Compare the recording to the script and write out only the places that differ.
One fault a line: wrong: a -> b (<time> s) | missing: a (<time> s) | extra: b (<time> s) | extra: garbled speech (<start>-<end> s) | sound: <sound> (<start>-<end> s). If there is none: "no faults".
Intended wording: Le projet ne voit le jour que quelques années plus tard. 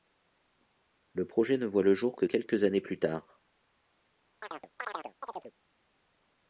sound: chirp (4.4-5.5 s)